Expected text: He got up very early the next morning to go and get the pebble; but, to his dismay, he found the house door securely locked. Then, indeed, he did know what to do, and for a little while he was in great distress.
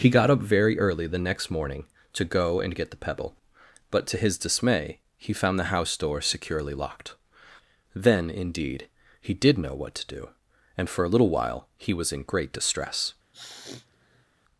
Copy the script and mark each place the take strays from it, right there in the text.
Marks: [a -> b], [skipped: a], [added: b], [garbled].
He got up very early the next morning to go and get the pebble; but, to his dismay, he found the house door securely locked. Then, indeed, he did know what to do, and for a little while he was in great distress.